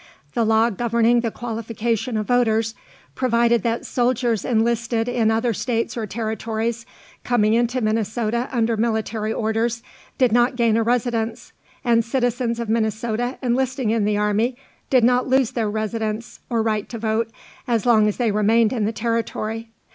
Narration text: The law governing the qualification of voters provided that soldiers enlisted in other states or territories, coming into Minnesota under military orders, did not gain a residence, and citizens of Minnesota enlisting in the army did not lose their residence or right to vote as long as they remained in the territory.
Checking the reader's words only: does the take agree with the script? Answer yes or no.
yes